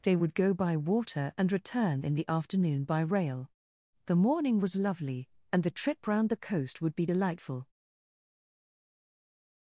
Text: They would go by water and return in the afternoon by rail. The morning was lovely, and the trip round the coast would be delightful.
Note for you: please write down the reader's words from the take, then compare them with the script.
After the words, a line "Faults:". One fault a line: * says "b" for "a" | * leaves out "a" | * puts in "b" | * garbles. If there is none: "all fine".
They would go by water and return in the afternoon by rail. The morning was lovely, and the trip round the coast would be delightful.
Faults:
all fine